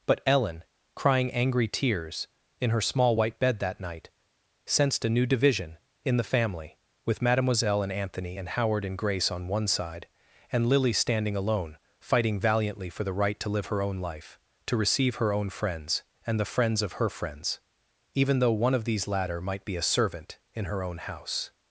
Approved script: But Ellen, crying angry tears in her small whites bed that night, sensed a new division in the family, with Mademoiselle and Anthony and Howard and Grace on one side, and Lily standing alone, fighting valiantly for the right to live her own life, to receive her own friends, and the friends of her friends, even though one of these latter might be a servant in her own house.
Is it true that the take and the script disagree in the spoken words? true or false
true